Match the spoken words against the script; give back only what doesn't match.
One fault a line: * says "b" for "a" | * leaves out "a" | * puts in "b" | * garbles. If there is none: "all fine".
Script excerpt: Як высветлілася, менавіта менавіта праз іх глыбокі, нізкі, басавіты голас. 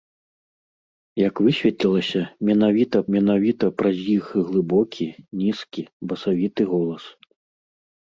all fine